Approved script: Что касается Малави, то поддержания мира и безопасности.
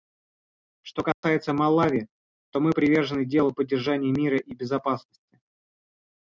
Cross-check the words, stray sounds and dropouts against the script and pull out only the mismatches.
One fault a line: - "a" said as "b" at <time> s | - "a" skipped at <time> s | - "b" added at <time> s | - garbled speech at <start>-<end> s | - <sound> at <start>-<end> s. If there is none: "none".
- dropout at 1.1-1.2 s
- "мы привержены делу" added at 2.6 s